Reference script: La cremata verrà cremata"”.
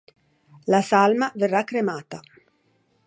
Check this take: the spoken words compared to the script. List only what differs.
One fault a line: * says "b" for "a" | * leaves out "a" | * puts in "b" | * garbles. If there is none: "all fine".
* says "salma" for "cremata"